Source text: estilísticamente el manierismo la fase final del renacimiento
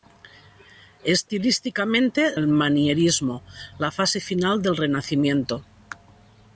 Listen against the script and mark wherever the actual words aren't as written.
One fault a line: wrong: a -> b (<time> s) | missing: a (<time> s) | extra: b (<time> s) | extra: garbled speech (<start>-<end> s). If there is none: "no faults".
no faults